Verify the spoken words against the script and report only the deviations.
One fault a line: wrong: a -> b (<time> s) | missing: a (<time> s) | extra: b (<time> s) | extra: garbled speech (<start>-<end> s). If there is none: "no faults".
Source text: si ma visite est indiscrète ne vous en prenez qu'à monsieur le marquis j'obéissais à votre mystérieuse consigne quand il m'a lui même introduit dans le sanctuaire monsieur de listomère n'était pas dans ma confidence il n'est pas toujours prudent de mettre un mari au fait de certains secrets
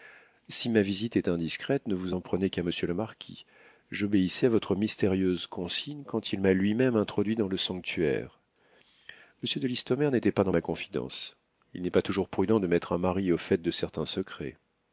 no faults